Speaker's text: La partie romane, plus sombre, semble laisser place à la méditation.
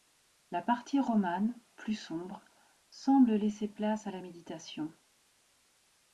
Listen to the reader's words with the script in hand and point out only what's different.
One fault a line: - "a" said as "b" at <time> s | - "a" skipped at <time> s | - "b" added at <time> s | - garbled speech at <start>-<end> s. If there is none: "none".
none